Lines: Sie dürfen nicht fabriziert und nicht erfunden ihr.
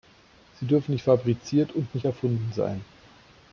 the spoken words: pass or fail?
fail